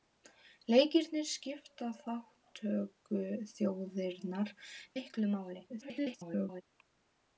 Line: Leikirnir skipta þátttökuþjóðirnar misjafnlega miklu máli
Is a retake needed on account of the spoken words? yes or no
yes